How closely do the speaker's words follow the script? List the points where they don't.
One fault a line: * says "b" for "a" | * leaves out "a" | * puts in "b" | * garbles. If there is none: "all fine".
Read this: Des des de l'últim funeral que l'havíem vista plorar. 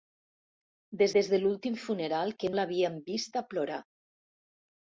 all fine